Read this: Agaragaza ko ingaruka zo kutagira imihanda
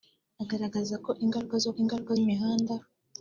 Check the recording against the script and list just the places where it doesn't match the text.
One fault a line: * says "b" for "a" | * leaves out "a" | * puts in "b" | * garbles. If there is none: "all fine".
* says "ingaruka" for "kutagira"